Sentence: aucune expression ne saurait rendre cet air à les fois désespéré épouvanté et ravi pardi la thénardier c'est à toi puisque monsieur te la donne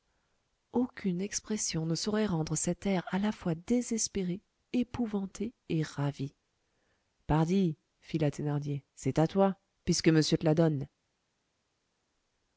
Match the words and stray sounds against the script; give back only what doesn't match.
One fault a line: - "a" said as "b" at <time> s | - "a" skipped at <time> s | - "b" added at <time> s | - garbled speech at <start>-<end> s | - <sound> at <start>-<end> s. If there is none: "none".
- "les" said as "la" at 3.2 s
- "fit" added at 8.0 s